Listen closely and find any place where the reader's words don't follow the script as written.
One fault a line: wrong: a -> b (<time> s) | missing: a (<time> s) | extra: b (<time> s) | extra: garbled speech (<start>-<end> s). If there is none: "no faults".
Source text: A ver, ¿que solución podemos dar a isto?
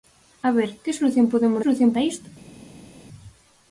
wrong: dar -> solución (1.6 s)